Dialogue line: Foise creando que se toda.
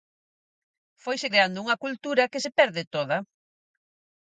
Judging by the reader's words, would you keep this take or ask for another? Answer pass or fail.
fail